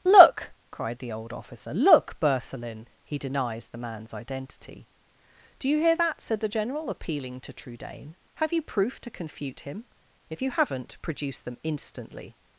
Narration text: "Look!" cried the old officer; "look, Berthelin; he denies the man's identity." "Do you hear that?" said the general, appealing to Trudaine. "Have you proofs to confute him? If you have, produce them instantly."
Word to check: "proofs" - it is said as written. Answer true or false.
false